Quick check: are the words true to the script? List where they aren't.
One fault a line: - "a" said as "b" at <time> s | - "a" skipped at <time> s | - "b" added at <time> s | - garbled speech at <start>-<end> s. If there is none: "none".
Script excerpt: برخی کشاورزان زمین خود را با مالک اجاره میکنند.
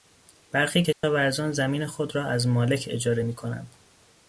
- "با" said as "از" at 2.2 s